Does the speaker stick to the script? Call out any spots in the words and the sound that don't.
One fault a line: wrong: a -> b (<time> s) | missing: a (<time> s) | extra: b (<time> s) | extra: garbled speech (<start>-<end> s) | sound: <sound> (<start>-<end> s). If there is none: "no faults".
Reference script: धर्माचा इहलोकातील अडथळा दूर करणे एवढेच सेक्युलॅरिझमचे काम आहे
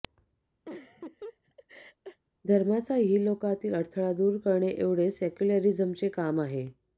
sound: laugh (0.7-2.2 s)